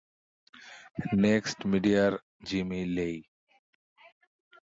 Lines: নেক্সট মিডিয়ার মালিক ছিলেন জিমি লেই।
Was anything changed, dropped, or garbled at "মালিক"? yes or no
yes